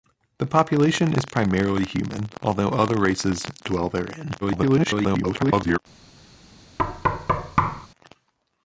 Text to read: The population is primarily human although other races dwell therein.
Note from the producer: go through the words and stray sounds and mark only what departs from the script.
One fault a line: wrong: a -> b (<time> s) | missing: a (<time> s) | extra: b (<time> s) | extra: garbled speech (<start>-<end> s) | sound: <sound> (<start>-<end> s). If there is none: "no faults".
extra: garbled speech (4.4-5.8 s)
sound: thud (6.8-7.9 s)